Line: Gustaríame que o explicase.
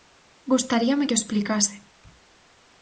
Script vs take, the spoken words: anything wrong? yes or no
no